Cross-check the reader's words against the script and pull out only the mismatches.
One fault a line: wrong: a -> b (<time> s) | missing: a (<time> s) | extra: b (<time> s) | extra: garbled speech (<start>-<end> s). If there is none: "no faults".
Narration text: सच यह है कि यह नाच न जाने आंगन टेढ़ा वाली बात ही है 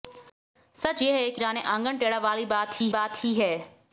missing: यह नाच न (1.4 s)
extra: बात ही (2.9 s)